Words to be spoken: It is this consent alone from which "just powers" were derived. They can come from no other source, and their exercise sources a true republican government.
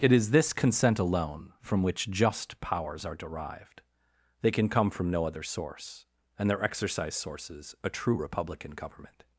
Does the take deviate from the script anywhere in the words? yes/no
yes